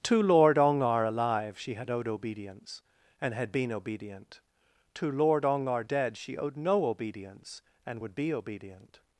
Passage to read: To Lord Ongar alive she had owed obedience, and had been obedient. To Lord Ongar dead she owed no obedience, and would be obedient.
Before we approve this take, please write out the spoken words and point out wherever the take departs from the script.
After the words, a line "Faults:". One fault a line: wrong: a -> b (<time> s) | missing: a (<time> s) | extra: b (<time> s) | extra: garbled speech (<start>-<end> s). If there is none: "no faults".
To Lord Ongar alive she had owed obedience, and had been obedient. To Lord Ongar dead she owed no obedience, and would be obedient.
Faults:
no faults